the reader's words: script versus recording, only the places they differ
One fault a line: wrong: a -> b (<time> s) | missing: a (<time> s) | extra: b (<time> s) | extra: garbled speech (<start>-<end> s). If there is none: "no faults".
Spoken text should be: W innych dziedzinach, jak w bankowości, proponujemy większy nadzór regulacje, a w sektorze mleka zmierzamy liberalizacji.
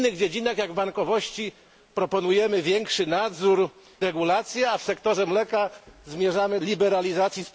no faults